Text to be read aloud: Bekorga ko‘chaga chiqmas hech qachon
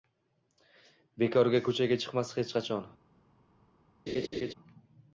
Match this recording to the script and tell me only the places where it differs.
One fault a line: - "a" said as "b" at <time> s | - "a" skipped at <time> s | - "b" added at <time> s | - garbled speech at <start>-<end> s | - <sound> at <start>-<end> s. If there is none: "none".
- laugh at 4.1-4.5 s